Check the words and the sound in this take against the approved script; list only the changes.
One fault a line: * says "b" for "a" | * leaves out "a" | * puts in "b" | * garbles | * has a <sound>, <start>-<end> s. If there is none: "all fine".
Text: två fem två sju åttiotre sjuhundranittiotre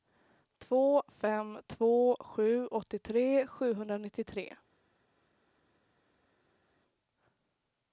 all fine